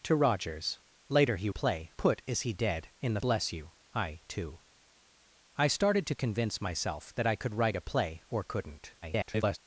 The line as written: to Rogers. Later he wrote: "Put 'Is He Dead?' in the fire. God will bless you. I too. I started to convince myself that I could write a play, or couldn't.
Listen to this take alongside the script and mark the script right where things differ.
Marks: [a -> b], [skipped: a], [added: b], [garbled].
to Rogers. Later he [wrote: -> play] "Put 'Is He Dead?' in the [skipped: fire. God will] bless you. I too. I started to convince myself that I could write a play, or couldn't. [garbled]